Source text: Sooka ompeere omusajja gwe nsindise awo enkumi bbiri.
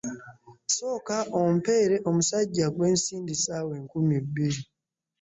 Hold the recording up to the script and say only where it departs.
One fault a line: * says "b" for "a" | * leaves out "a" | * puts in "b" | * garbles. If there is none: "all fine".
all fine